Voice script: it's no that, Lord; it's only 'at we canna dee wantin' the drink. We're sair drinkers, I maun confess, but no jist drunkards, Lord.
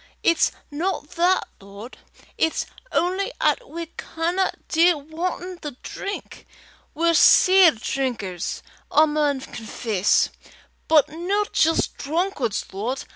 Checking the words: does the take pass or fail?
pass